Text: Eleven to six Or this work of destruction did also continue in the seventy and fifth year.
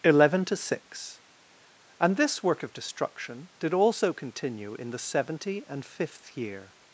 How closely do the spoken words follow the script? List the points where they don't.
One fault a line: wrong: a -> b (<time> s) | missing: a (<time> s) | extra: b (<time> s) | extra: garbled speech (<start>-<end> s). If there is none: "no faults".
wrong: Or -> And (2.0 s)